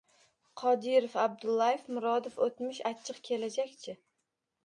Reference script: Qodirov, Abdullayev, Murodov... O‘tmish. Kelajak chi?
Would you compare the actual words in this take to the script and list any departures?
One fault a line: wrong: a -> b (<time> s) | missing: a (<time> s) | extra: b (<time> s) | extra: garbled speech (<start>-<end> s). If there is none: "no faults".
extra: achchiq (2.9 s)